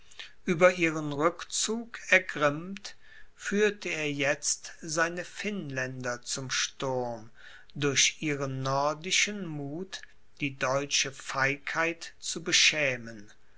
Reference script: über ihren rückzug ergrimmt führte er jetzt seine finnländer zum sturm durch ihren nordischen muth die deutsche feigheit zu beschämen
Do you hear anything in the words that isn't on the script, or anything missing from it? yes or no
no